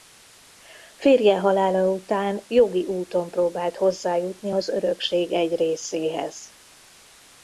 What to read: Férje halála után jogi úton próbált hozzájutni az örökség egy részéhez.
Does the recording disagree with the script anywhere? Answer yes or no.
no